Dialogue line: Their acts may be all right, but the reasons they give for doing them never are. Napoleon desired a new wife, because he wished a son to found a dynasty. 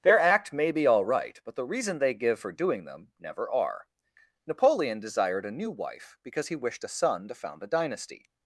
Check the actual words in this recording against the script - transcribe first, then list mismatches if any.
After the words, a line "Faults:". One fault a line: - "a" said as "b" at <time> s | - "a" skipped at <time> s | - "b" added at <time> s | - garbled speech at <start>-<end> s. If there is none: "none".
Their act may be all right, but the reason they give for doing them never are. Napoleon desired a new wife, because he wished a son to found a dynasty.
Faults:
- "acts" said as "act" at 0.2 s
- "reasons" said as "reason" at 1.6 s